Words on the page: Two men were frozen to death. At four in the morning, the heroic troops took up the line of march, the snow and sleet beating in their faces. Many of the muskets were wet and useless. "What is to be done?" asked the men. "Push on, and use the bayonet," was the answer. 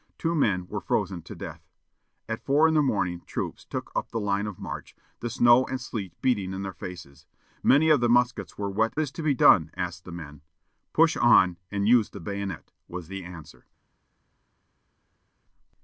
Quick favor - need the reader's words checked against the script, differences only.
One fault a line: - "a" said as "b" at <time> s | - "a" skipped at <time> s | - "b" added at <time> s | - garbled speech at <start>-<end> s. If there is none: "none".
- "the heroic" skipped at 3.2 s
- "and useless What" skipped at 9.0 s